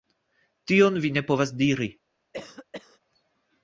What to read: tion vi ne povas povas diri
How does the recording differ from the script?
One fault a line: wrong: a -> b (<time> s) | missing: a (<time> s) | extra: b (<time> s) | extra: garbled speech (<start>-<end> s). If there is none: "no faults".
missing: povas (1.6 s)